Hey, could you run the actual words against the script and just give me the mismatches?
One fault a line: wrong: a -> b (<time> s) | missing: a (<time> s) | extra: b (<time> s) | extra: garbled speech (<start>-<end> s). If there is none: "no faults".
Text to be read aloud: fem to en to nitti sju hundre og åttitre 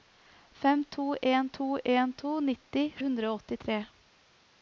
extra: en to (2.0 s)
missing: sju (2.8 s)